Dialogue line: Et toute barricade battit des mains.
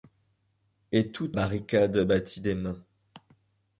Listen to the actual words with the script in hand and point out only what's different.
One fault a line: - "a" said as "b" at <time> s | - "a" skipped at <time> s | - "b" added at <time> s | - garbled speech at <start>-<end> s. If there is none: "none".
none